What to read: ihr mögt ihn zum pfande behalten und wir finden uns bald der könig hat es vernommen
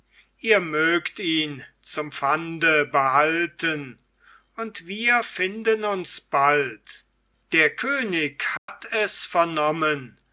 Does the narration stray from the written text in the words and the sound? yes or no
yes